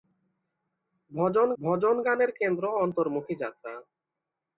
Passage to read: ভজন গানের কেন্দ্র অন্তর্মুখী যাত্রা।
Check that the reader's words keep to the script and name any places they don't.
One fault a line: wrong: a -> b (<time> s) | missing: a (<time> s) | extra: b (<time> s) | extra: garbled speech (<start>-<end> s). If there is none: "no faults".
extra: ভজন (1.6 s)